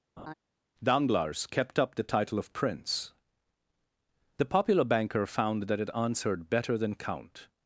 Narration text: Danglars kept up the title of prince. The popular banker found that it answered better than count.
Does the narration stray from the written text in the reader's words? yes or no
no